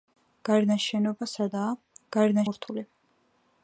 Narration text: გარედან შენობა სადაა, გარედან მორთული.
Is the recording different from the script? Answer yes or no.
no